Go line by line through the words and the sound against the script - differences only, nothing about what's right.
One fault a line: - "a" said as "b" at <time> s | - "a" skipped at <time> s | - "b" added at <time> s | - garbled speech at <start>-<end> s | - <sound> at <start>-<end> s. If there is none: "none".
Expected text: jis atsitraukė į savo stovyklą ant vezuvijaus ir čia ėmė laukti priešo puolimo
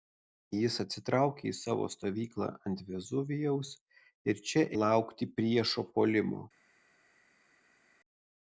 - "ėmė" skipped at 4.6 s